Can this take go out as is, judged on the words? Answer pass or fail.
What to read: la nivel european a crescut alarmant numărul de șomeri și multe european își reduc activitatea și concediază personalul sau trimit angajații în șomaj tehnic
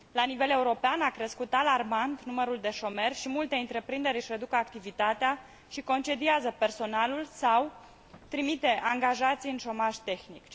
fail